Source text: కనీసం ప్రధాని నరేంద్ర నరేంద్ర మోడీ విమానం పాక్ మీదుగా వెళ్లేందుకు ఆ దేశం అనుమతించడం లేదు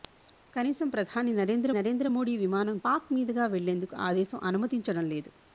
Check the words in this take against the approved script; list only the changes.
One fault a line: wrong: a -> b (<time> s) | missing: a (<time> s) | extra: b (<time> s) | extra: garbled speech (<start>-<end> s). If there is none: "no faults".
no faults